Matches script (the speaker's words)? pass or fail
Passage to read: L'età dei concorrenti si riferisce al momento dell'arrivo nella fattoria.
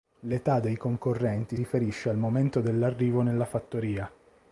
fail